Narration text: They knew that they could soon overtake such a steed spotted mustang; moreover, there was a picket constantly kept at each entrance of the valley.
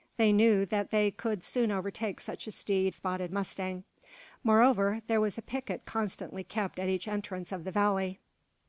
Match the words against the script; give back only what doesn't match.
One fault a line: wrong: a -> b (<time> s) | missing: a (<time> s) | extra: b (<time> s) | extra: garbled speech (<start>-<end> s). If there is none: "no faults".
no faults